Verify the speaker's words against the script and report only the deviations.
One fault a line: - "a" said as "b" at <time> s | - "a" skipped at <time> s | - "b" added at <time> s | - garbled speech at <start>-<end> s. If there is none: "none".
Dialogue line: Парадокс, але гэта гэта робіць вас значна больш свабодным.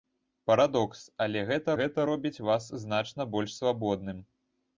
none